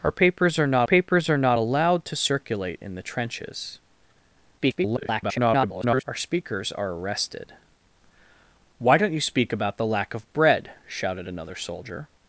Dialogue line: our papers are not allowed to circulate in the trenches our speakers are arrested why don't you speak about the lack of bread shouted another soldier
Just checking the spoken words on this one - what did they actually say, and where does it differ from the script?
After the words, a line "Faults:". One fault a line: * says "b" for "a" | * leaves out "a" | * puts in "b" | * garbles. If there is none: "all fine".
our papers are not papers are not allowed to circulate in the trenches [garbled] our speakers are arrested why don't you speak about the lack of bread shouted another soldier
Faults:
* puts in "papers are not"
* garbles